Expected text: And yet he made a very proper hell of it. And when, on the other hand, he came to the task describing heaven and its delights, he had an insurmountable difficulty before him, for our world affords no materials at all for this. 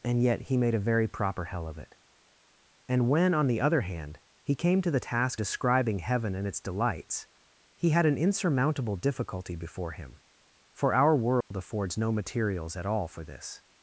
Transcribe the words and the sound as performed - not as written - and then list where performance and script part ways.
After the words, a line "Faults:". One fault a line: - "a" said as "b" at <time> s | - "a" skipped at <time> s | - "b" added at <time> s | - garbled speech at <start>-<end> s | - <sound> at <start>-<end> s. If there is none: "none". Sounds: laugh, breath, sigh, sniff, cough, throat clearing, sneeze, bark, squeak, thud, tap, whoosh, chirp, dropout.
And yet he made a very proper hell of it. And when, on the other hand, he came to the task describing heaven and its delights, he had an insurmountable difficulty before him, for our world affords no materials at all for this.
Faults:
- dropout at 11.4-11.5 s